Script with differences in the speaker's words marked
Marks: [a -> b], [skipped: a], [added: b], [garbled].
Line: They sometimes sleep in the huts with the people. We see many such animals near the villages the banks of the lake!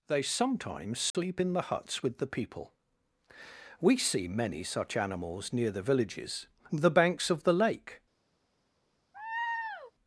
They sometimes sleep in the huts with the people. We see many such animals near the villages the banks of the lake!